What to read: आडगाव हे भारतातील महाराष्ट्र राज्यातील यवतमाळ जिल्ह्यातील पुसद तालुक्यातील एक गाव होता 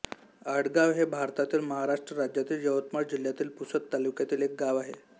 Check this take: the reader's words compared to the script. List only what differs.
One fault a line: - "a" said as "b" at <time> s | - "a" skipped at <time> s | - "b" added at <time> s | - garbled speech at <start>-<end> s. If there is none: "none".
- "होता" said as "आहे" at 4.8 s